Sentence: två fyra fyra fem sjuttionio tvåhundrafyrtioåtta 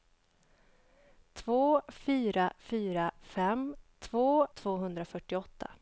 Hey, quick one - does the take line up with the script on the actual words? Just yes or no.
no